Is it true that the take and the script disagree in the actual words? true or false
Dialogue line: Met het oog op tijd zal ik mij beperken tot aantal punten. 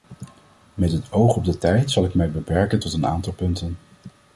true